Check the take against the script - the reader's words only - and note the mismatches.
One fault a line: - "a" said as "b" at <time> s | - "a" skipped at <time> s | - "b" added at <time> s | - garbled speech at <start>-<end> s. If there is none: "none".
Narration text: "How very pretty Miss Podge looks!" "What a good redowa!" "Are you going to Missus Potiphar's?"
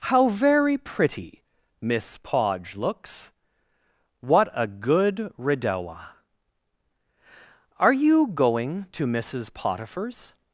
none